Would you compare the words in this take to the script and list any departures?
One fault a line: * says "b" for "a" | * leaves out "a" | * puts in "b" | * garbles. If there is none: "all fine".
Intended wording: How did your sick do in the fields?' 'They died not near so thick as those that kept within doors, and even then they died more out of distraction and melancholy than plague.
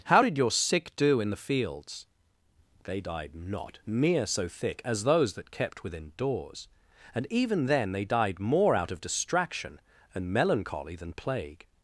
all fine